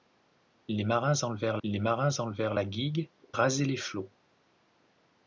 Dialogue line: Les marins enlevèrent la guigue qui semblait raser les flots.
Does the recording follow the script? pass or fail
fail